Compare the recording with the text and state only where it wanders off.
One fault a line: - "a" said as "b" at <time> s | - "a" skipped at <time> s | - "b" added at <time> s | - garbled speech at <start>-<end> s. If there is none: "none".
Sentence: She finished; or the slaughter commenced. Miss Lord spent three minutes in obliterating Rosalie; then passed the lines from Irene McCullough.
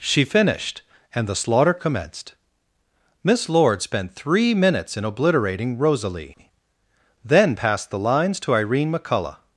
- "or" said as "and" at 1.1 s
- "from" said as "to" at 8.4 s